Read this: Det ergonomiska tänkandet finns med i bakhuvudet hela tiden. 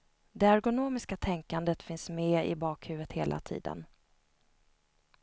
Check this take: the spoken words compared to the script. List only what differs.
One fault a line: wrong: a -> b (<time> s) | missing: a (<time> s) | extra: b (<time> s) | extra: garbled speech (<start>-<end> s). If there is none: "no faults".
no faults